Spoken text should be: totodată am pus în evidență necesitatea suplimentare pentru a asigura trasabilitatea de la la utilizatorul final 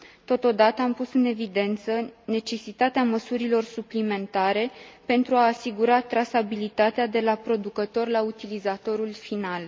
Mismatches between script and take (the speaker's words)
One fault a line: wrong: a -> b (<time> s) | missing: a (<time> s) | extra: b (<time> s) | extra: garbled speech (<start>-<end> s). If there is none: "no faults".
extra: măsurilor (3.0 s)
extra: producător (7.3 s)